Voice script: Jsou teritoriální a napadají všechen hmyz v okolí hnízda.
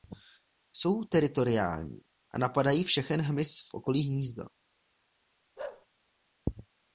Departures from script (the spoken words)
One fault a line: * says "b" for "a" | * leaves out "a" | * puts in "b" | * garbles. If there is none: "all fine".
all fine